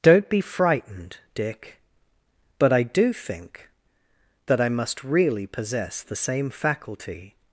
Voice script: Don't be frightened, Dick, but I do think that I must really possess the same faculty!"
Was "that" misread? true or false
false